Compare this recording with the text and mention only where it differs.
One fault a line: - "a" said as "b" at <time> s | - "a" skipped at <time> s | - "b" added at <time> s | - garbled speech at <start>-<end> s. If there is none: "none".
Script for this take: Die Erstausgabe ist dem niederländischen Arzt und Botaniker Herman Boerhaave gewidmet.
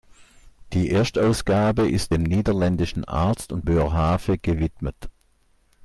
- "Botaniker Herman" skipped at 3.6 s